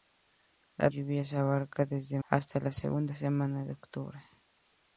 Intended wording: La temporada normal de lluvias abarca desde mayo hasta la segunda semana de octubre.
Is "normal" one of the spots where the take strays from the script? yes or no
yes